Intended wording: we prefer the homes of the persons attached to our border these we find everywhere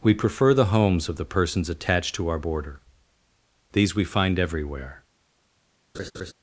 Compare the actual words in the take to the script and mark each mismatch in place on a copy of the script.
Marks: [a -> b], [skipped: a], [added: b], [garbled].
we prefer the homes of the persons attached to our border these we find everywhere